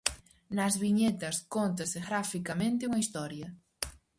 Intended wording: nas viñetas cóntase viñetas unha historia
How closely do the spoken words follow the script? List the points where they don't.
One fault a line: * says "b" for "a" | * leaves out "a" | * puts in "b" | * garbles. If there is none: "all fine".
* says "graficamente" for "viñetas"